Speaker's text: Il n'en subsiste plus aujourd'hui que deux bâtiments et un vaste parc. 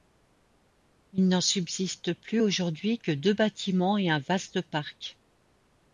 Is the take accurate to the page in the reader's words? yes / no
yes